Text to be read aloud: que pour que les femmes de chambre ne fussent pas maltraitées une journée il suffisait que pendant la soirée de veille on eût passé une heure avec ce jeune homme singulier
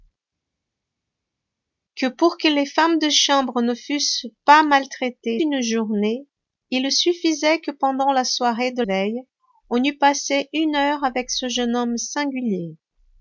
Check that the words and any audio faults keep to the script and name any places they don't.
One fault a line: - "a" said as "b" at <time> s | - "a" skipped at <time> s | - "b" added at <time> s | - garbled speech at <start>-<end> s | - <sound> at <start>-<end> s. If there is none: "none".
none